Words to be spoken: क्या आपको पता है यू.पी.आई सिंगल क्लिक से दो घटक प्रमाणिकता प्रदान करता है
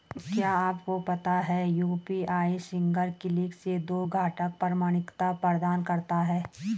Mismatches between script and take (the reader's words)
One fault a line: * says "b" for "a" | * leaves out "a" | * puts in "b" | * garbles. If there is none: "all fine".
all fine